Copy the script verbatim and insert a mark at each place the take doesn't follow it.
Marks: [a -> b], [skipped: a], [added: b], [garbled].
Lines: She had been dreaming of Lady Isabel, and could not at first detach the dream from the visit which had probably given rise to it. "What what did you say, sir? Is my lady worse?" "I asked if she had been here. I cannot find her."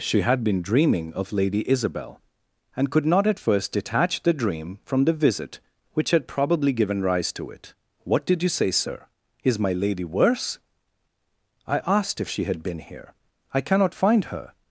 She had been dreaming of Lady Isabel, and could not at first detach the dream from the visit which had probably given rise to it. "What [skipped: what] did you say, sir? Is my lady worse?" "I asked if she had been here. I cannot find her."